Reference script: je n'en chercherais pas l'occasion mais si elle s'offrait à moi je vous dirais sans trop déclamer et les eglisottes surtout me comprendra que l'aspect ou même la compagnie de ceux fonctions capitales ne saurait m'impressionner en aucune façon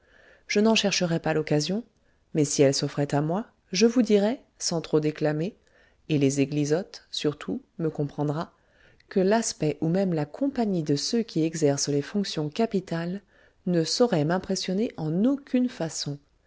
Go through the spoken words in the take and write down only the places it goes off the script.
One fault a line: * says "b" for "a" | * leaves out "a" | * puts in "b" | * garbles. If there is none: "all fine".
* puts in "qui exercent les"